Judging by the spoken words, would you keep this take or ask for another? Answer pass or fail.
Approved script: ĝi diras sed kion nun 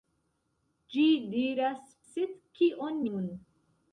pass